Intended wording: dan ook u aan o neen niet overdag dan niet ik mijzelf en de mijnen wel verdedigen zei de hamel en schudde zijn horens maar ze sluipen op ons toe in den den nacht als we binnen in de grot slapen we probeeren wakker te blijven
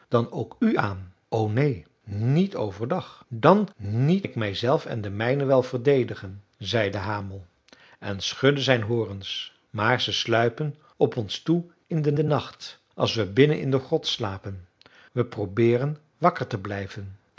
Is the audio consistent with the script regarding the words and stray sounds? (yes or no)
yes